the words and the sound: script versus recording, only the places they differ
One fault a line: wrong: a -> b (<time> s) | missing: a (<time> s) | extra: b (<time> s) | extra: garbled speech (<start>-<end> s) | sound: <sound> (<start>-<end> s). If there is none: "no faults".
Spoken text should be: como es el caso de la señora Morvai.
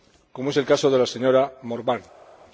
no faults